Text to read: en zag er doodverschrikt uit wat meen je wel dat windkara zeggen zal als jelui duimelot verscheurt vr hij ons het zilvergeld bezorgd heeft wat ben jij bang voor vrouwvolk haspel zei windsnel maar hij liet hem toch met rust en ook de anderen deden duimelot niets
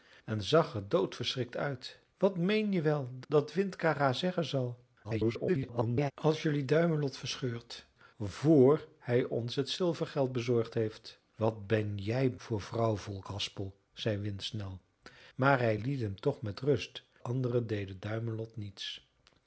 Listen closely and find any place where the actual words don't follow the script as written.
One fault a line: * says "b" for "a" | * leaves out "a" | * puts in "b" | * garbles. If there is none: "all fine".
* garbles
* leaves out "bang"
* leaves out "en ook de"